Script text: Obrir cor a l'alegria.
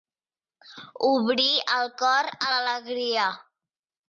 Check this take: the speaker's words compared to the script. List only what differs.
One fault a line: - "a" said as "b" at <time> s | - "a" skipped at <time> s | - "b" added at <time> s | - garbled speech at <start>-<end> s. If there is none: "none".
- "el" added at 1.8 s